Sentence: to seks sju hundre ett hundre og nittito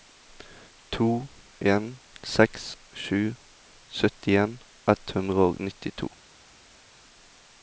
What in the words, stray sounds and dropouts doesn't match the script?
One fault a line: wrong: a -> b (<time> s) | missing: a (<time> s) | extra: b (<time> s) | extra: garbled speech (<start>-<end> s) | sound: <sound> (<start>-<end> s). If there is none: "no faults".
extra: en (1.7 s)
wrong: hundre -> syttien (4.0 s)